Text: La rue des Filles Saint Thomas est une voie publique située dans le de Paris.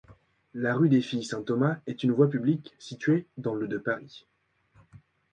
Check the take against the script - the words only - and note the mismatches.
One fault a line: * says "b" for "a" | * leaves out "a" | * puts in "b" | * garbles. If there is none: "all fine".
all fine